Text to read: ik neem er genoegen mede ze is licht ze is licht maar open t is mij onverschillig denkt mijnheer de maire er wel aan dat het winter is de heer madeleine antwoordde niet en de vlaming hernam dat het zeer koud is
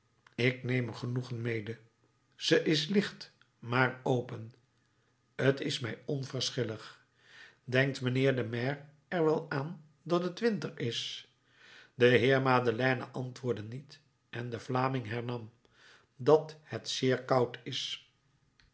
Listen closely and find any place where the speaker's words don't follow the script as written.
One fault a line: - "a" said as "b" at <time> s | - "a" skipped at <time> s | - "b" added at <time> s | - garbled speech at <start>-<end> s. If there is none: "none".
- "ze is licht" skipped at 3.3 s